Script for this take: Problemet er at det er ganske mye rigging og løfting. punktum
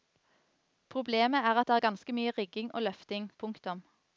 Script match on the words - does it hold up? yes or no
yes